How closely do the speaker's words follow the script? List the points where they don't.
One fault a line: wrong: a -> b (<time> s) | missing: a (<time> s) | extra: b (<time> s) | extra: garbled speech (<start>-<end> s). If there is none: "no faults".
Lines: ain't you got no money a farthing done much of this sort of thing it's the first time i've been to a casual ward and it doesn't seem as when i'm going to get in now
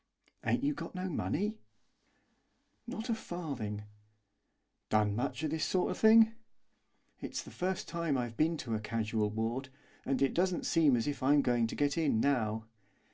extra: not (2.9 s)
wrong: when -> if (11.1 s)